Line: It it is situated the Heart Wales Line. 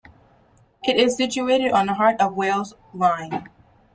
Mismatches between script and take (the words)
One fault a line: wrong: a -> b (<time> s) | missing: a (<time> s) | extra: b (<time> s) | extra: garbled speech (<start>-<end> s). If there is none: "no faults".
missing: it (1.0 s)
extra: on (1.7 s)
extra: of (2.2 s)